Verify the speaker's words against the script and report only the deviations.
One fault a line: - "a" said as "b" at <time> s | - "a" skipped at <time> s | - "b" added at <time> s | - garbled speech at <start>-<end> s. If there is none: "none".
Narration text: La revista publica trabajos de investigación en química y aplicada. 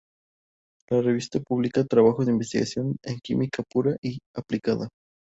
- "pura" added at 3.7 s